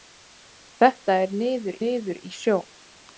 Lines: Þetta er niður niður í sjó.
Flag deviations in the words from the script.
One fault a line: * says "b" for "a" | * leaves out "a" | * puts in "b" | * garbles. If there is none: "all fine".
all fine